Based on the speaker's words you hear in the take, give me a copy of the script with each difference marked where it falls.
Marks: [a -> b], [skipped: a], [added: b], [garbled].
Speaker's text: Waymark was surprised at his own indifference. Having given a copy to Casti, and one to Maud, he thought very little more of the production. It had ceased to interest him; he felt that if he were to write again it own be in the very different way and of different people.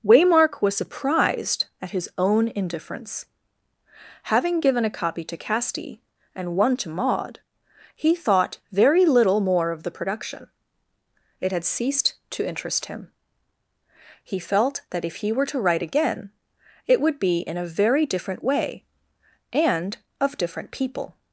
Waymark was surprised at his own indifference. Having given a copy to Casti, and one to Maud, he thought very little more of the production. It had ceased to interest him; he felt that if he were to write again it [own -> would] be in [the -> a] very different way and of different people.